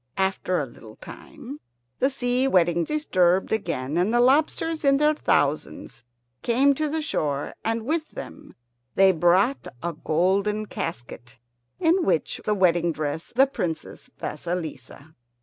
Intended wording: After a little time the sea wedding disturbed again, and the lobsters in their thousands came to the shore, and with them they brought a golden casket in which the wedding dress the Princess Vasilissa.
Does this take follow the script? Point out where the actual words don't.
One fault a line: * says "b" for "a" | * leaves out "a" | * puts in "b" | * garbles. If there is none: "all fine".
all fine